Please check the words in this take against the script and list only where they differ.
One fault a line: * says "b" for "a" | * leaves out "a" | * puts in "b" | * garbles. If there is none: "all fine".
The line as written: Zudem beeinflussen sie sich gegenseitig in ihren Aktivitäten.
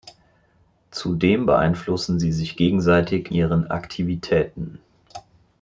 * leaves out "in"